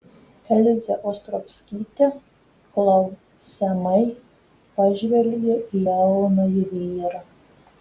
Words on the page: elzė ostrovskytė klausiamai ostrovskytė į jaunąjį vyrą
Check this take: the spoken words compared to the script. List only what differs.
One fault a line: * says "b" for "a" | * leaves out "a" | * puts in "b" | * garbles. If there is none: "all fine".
* says "pažvelgė" for "ostrovskytė"